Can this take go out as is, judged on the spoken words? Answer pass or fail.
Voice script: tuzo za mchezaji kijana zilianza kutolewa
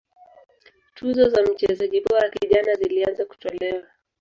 fail